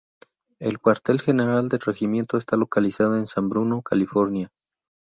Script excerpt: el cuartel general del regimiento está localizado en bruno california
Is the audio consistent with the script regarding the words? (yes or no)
no